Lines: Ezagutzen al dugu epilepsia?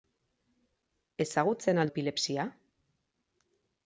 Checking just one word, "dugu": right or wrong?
wrong